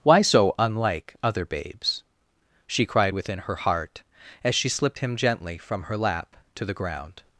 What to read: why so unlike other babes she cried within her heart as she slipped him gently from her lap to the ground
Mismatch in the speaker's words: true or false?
false